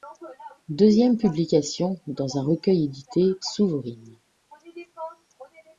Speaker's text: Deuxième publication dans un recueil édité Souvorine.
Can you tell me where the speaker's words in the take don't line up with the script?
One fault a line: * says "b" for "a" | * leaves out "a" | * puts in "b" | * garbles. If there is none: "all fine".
all fine